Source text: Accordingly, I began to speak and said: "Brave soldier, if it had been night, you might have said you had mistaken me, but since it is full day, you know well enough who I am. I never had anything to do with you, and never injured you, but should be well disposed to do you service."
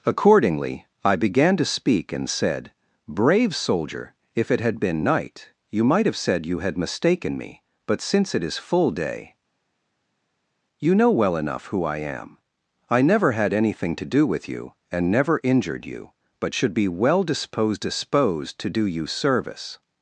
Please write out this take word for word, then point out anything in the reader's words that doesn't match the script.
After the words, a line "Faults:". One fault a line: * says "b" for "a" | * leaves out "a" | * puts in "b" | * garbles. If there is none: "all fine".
Accordingly, I began to speak and said: "Brave soldier, if it had been night, you might have said you had mistaken me, but since it is full day, you know well enough who I am. I never had anything to do with you, and never injured you, but should be well disposed disposed to do you service."
Faults:
* puts in "disposed"